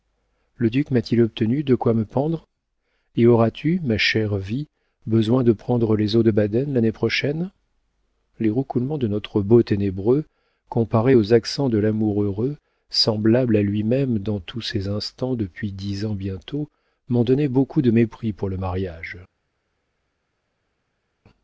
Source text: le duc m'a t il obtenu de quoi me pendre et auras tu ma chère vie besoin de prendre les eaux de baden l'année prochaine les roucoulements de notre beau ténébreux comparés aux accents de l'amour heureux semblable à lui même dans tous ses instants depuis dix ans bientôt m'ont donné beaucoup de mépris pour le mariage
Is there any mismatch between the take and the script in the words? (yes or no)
no